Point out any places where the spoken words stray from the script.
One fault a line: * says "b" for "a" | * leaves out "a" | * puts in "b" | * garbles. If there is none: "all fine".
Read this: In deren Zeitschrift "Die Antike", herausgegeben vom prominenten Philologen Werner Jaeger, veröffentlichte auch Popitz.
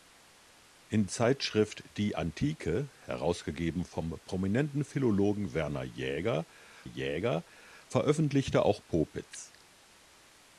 * leaves out "deren"
* puts in "Jaeger"